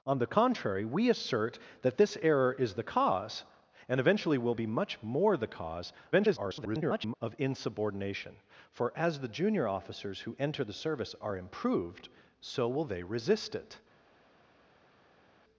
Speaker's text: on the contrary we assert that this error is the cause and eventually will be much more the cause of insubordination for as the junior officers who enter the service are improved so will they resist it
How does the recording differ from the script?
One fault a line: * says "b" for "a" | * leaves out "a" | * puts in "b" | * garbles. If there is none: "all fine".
* garbles